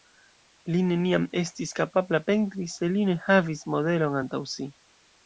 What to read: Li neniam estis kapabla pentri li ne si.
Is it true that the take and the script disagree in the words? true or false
true